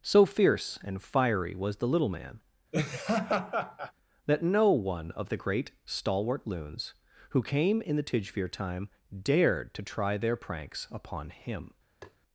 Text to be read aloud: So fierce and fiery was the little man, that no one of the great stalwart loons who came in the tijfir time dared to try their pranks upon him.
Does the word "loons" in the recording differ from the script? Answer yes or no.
no